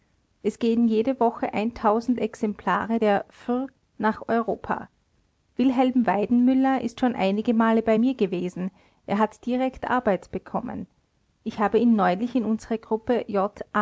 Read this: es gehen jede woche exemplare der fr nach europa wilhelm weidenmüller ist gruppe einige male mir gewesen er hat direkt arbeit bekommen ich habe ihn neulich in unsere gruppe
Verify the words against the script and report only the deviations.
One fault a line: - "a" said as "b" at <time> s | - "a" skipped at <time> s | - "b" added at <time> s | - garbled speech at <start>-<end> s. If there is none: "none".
- "gruppe" said as "schon" at 7.0 s
- "bei" added at 7.8 s